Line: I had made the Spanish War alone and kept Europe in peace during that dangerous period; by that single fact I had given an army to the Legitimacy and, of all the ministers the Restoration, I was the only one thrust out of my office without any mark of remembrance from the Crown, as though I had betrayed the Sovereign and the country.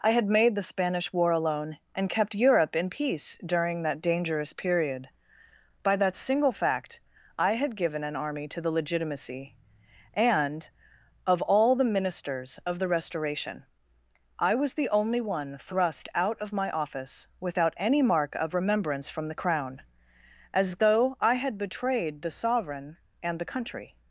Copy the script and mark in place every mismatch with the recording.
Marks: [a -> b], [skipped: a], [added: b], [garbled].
I had made the Spanish War alone and kept Europe in peace during that dangerous period; by that single fact I had given an army to the Legitimacy and, of all the ministers [added: of] the Restoration, I was the only one thrust out of my office without any mark of remembrance from the Crown, as though I had betrayed the Sovereign and the country.